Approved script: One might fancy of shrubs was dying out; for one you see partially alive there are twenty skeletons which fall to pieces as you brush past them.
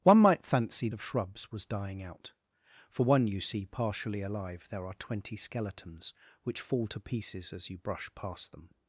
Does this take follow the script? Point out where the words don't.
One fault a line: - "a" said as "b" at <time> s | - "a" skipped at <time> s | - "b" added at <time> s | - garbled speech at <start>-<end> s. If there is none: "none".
none